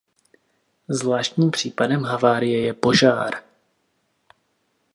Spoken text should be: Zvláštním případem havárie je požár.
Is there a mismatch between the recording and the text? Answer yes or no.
no